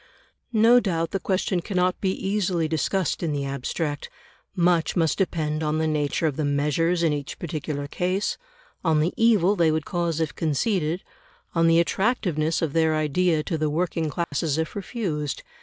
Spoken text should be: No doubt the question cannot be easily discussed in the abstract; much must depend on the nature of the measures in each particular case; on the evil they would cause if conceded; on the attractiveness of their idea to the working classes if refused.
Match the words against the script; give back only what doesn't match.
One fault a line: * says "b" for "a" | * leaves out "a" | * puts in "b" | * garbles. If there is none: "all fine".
all fine